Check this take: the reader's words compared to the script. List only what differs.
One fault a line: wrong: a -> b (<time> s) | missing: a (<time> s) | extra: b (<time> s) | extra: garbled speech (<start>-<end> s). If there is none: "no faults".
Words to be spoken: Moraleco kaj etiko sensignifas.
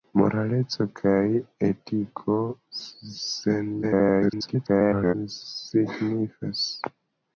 extra: garbled speech (3.8-5.1 s)